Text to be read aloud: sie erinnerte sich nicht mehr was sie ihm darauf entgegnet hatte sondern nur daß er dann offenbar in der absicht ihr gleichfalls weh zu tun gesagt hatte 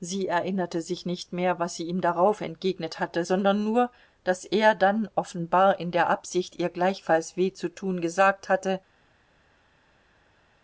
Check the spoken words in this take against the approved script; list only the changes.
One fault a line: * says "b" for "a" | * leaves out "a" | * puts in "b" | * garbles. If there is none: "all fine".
all fine